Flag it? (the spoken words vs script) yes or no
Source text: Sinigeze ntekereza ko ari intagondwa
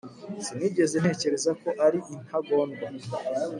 no